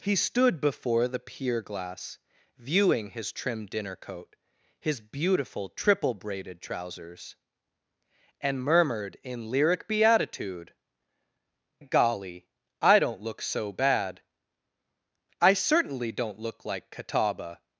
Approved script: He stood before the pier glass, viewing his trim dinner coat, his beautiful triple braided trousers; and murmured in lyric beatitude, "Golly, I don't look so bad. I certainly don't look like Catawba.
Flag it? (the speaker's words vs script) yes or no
no